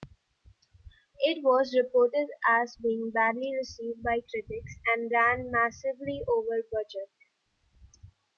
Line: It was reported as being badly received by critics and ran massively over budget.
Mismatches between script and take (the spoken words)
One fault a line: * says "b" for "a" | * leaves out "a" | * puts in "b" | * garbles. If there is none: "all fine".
all fine